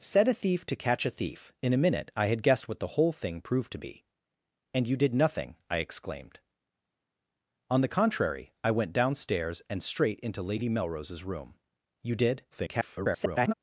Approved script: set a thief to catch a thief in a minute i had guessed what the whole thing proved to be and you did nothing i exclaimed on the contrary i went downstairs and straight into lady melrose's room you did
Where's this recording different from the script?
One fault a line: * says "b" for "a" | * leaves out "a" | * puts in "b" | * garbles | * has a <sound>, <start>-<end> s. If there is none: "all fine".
* garbles